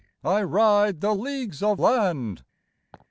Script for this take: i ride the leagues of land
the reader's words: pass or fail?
pass